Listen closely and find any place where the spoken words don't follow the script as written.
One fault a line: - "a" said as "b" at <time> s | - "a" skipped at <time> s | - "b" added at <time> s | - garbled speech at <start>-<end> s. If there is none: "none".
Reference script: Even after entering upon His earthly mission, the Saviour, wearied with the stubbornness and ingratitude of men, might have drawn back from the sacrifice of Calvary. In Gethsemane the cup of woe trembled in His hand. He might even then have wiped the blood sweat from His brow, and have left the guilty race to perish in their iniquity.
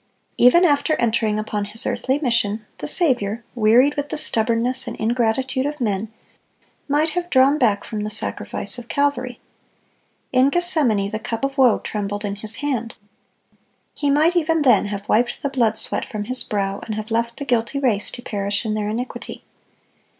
none